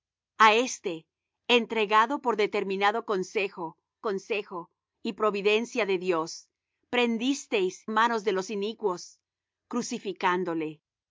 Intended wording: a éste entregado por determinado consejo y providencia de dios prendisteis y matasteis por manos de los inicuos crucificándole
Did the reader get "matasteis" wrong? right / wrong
wrong